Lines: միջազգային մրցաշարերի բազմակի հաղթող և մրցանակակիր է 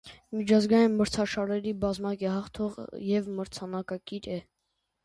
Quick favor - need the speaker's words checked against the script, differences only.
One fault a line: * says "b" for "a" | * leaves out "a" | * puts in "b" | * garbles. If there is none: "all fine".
all fine